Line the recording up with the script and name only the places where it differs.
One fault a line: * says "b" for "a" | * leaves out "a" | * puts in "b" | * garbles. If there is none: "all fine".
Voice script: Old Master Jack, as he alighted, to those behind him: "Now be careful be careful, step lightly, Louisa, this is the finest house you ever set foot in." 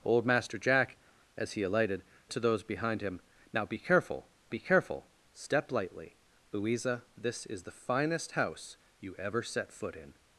all fine